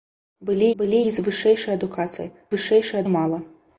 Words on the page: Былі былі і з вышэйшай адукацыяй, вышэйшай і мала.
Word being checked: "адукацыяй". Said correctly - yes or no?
yes